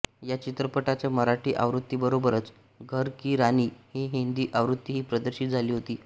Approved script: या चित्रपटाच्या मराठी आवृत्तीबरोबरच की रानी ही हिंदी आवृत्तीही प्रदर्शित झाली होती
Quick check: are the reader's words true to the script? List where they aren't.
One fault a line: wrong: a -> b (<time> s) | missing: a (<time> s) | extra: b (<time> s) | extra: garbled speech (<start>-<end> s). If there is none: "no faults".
extra: घर (2.8 s)